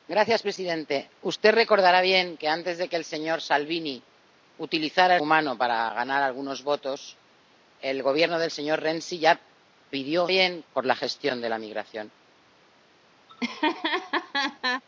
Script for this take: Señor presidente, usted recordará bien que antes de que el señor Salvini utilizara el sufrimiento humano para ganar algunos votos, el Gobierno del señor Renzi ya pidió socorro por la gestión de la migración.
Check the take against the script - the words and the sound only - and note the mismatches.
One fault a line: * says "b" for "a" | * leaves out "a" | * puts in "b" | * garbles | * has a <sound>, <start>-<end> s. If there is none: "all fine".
* leaves out "sufrimiento"
* says "bien" for "socorro"
* has a laugh, 13.3-14.8 s